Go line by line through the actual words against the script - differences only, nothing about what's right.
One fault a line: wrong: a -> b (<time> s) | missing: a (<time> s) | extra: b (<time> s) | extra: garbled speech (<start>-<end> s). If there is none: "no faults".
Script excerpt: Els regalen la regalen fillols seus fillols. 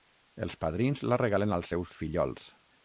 wrong: regalen -> padrins (0.6 s)
wrong: fillols -> als (1.6 s)